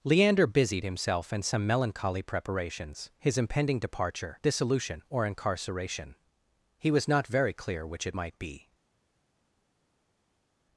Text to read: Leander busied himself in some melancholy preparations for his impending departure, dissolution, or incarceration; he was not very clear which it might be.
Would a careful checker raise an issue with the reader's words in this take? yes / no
yes